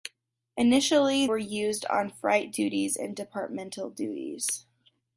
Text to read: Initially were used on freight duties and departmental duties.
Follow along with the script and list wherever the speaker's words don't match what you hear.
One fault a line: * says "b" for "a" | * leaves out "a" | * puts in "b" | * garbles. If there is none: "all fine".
all fine